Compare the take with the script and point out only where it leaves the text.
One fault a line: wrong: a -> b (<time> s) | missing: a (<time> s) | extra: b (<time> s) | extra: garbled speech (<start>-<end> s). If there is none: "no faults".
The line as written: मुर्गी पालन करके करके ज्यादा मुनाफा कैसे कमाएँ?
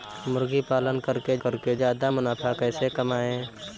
no faults